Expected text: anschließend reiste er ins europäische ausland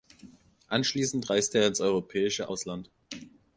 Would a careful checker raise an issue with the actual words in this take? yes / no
no